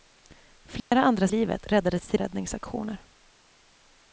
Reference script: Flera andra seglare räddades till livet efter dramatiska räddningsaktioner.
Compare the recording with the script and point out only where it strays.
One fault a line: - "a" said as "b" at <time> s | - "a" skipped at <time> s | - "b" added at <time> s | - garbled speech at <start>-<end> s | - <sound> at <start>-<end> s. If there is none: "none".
- dropout at 0.8-0.9 s
- "seglare" said as "livet" at 1.3 s
- "livet efter dramatiska" skipped at 2.2 s